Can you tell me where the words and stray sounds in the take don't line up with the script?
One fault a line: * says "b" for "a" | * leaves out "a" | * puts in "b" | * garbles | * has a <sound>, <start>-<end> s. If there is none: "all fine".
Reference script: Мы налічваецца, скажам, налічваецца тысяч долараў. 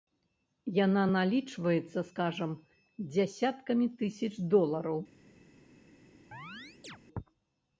* says "Яна" for "Мы"
* says "дзясяткамі" for "налічваецца"
* has a chirp, 6.3-7.0 s